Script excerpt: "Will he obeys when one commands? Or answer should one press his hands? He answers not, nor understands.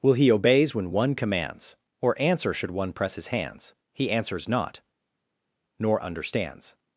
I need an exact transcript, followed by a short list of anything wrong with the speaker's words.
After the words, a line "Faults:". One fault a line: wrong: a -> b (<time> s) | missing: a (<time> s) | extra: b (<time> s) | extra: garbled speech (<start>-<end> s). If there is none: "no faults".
"Will he obeys when one commands? Or answer should one press his hands? He answers not, nor understands.
Faults:
no faults